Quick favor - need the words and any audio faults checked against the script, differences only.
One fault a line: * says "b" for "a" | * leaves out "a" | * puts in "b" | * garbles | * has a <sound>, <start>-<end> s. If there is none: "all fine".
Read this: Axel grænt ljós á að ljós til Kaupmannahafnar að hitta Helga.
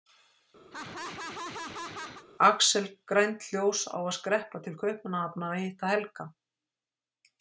* has a laugh, 0.7-2.2 s
* says "skreppa" for "ljós"